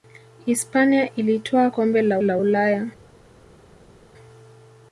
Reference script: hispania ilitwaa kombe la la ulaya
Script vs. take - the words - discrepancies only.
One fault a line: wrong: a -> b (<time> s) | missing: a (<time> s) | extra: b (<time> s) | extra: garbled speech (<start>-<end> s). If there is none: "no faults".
no faults